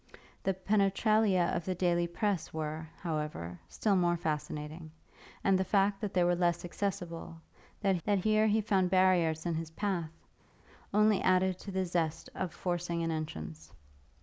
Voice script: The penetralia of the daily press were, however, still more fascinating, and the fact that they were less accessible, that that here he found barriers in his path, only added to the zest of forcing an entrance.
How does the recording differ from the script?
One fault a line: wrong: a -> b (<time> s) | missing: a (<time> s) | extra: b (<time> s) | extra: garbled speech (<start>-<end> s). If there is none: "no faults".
no faults